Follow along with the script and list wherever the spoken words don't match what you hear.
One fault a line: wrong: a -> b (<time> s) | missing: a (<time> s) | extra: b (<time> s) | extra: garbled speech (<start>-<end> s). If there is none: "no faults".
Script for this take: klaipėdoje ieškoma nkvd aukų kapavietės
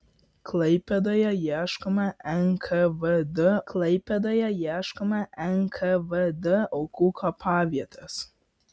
extra: klaipėdoje ieškoma nkvd (3.7 s)